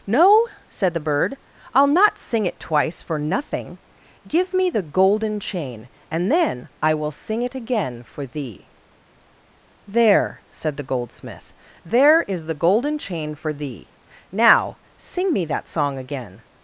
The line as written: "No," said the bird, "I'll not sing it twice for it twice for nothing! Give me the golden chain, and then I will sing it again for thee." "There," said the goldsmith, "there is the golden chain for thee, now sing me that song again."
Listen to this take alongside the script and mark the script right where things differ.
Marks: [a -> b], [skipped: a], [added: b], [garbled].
"No," said the bird, "I'll not sing it twice for [skipped: it twice for] nothing! Give me the golden chain, and then I will sing it again for thee." "There," said the goldsmith, "there is the golden chain for thee, now sing me that song again."